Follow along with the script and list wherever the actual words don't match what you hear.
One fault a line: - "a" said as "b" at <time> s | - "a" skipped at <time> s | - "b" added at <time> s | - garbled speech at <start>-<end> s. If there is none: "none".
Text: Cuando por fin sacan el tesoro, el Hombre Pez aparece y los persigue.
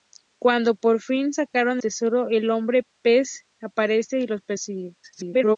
- "el" skipped at 1.8 s
- garbled speech at 5.0-5.6 s